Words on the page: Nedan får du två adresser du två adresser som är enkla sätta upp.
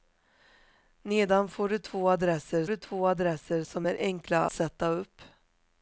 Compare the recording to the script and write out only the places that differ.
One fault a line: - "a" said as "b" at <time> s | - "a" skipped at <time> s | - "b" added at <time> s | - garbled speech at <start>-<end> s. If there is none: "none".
none